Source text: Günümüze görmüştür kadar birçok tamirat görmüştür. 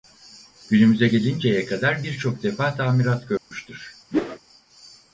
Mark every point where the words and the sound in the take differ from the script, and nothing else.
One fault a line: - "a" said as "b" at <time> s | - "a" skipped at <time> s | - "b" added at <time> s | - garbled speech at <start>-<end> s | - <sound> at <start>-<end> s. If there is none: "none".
- "görmüştür" said as "gelinceye" at 1.1 s
- "defa" added at 2.4 s
- dropout at 3.4-3.5 s
- whoosh at 4.1-4.4 s